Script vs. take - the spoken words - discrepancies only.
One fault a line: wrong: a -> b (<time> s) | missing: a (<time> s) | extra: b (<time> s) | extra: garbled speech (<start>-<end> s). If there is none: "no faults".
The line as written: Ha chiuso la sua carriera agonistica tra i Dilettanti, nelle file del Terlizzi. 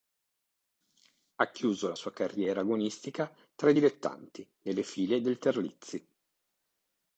no faults